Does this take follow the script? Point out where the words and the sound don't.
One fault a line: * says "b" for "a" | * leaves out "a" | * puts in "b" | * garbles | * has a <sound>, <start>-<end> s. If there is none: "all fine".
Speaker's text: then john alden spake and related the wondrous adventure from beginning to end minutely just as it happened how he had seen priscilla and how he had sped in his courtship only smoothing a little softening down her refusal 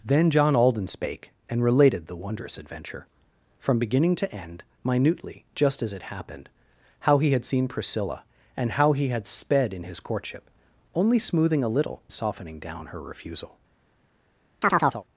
* has a chirp, 14.6-15.0 s